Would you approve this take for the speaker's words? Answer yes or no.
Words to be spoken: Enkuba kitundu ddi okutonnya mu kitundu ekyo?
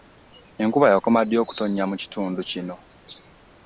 no